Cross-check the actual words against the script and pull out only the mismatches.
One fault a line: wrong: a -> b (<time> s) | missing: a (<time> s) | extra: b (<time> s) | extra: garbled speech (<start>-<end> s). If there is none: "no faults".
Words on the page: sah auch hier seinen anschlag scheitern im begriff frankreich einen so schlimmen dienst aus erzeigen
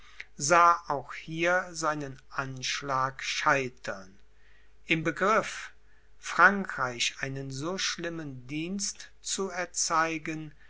wrong: aus -> zu (9.2 s)